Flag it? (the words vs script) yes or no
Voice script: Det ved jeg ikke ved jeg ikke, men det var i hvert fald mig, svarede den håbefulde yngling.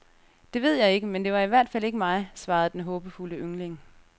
yes